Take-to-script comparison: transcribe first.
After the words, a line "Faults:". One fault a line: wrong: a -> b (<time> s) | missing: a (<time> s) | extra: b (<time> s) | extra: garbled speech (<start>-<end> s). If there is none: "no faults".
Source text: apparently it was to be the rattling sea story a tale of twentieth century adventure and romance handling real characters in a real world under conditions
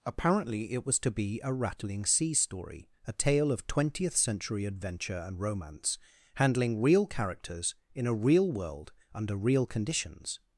apparently it was to be a rattling sea story a tale of twentieth century adventure and romance handling real characters in a real world under real conditions
Faults:
wrong: the -> a (1.4 s)
extra: real (9.3 s)